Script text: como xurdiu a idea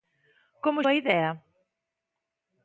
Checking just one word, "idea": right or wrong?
right